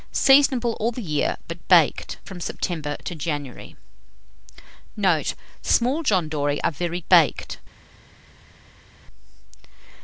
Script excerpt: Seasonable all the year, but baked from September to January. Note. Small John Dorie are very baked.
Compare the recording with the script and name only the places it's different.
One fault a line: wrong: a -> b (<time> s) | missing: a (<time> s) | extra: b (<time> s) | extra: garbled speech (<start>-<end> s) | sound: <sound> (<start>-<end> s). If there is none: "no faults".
no faults